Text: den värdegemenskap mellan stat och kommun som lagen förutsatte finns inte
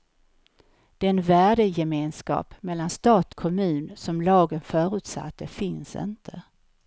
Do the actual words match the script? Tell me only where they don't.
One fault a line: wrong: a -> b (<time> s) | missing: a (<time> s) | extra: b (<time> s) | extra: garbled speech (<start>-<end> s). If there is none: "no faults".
missing: och (3.3 s)